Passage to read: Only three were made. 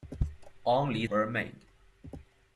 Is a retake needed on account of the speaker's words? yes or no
yes